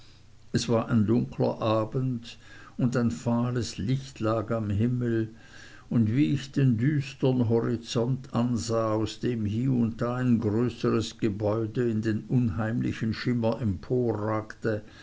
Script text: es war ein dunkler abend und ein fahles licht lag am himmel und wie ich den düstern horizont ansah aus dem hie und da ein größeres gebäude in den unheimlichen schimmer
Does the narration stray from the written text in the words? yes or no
no